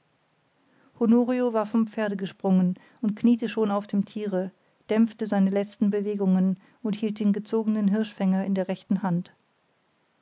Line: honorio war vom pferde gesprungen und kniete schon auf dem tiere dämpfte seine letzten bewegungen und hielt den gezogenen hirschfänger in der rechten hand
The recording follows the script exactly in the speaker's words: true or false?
true